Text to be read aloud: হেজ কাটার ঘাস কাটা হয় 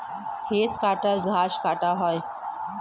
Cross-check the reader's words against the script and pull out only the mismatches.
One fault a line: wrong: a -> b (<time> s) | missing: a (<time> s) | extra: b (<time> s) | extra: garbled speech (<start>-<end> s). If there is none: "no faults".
no faults